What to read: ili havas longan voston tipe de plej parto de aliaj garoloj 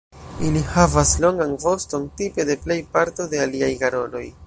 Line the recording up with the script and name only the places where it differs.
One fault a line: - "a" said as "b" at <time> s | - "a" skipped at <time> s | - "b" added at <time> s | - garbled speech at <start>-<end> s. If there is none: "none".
none